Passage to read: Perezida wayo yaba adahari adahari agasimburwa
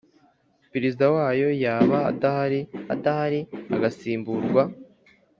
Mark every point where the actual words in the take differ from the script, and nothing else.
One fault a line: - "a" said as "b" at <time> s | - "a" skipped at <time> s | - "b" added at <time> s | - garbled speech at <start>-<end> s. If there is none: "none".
none